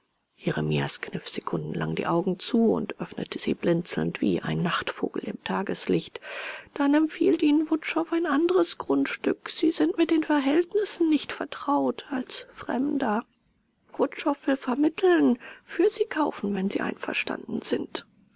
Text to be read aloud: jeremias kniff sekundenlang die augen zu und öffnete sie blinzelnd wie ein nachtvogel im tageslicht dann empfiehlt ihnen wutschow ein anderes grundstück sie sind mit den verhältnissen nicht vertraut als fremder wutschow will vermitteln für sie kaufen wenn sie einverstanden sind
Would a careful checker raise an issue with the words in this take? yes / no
no